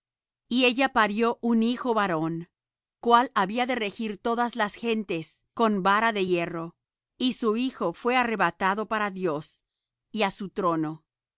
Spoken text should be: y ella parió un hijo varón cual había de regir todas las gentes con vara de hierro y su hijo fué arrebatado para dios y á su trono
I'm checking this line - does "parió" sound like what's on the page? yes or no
yes